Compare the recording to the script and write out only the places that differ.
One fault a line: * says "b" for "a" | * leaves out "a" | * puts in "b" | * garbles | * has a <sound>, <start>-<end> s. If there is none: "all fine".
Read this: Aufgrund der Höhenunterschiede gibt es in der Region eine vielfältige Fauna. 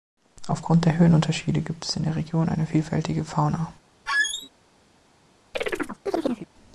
* has a squeak, 4.1-4.5 s
* has a chirp, 5.5-6.5 s